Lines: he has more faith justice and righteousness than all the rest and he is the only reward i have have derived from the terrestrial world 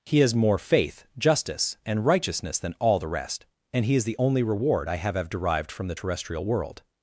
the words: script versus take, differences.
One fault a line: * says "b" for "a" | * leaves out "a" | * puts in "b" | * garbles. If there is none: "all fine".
all fine